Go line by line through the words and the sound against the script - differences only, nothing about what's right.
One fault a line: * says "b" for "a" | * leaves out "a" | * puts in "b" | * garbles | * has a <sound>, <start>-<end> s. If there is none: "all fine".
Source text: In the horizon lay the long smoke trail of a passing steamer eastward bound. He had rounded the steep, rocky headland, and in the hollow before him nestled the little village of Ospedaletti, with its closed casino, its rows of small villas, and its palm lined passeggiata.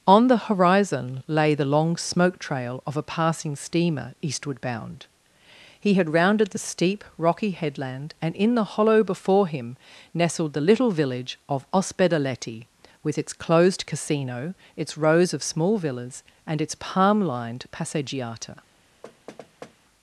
* says "On" for "In"
* has a thud, 19.0-19.8 s